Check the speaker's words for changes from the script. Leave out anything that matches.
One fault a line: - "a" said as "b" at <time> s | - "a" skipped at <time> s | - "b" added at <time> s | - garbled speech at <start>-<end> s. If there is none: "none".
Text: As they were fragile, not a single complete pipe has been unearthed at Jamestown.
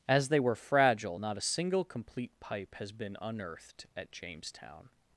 none